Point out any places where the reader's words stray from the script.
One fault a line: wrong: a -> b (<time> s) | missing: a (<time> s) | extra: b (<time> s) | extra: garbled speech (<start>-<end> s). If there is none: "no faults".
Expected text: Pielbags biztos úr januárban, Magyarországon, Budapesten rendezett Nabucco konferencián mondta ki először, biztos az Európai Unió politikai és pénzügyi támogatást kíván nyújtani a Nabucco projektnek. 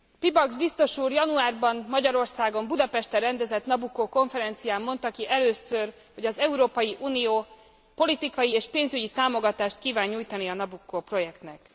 wrong: biztos -> hogy (6.1 s)